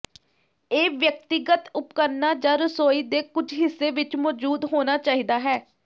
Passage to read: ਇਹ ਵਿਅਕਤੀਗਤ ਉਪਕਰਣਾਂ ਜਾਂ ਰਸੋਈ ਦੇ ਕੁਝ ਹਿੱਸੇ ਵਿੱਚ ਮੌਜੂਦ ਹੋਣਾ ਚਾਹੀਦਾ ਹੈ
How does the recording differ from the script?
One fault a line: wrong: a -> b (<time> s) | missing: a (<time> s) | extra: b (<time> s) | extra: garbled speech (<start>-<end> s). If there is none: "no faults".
no faults